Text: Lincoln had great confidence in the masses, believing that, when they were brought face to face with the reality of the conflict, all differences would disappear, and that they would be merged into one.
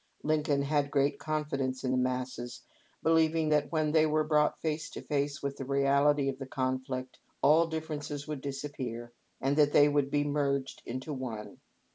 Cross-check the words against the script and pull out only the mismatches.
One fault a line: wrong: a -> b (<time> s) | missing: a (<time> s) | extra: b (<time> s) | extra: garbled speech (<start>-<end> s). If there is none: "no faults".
no faults